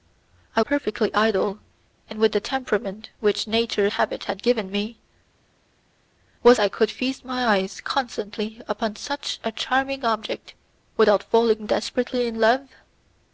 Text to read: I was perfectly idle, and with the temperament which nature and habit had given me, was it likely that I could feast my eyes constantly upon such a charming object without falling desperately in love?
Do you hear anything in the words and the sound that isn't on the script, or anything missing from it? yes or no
yes